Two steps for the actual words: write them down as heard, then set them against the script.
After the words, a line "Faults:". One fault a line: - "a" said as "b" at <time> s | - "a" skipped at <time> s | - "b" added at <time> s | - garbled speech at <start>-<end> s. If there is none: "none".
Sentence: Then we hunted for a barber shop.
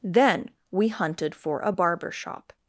Then we hunted for a barber shop.
Faults:
none